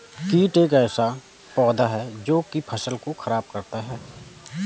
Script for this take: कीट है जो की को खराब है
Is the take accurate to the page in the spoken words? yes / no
no